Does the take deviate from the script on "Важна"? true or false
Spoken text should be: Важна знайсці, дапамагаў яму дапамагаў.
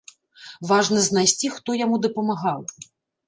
false